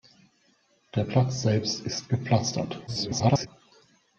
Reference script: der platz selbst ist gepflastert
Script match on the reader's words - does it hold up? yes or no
no